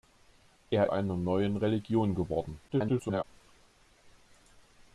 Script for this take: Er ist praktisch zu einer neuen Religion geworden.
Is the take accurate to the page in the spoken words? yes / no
no